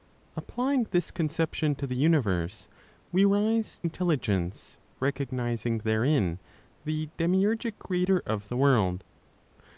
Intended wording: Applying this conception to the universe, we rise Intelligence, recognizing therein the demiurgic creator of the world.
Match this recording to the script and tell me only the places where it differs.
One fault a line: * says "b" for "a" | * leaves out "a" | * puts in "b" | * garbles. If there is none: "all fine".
all fine